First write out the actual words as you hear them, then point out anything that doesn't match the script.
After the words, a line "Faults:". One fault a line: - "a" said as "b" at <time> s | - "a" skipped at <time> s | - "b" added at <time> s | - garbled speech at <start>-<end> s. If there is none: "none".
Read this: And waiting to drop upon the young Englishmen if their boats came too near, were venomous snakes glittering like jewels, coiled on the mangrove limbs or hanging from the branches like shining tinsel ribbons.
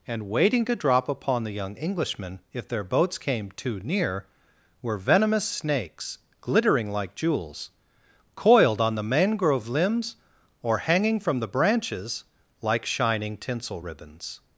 And waiting to drop upon the young Englishmen if their boats came too near, were venomous snakes glittering like jewels, coiled on the mangrove limbs or hanging from the branches like shining tinsel ribbons.
Faults:
none